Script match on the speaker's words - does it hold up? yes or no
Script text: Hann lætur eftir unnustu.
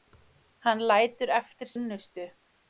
yes